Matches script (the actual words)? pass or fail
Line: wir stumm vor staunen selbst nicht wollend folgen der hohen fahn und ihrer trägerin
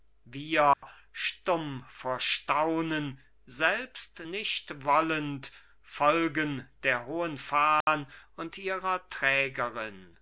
pass